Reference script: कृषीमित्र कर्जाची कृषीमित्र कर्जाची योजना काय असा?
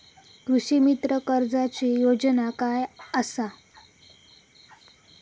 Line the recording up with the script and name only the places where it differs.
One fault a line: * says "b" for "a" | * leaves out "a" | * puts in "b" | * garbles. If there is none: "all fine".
* leaves out "कृषीमित्र कर्जाची"